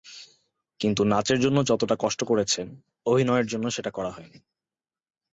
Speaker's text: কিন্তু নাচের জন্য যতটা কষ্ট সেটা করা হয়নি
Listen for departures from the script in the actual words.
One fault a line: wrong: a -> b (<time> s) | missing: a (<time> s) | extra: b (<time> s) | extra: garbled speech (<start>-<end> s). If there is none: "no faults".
extra: করেছেন অভিনয়ের জন্য (2.2 s)